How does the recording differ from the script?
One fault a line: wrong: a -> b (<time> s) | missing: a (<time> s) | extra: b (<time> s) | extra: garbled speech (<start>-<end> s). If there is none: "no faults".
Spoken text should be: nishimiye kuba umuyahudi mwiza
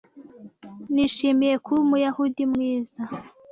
no faults